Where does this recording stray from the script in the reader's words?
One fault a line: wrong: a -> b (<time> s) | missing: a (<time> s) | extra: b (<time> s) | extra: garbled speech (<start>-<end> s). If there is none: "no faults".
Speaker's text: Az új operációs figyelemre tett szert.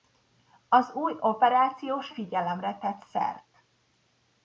no faults